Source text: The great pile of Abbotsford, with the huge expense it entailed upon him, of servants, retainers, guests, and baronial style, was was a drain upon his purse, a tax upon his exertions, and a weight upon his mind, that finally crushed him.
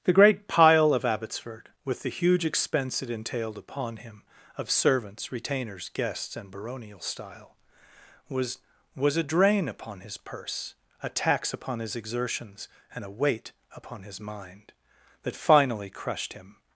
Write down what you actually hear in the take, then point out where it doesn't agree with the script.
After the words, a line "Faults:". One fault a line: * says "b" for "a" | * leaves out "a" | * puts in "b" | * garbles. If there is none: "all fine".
The great pile of Abbotsford, with the huge expense it entailed upon him, of servants, retainers, guests, and baronial style, was was a drain upon his purse, a tax upon his exertions, and a weight upon his mind, that finally crushed him.
Faults:
all fine